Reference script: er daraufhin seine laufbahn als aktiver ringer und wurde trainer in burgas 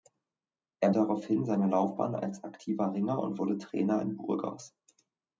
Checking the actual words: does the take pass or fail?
pass